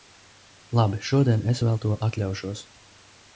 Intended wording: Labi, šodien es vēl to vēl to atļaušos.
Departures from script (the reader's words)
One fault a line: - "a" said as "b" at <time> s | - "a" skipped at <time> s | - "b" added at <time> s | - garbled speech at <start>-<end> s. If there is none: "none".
- "vēl to" skipped at 2.0 s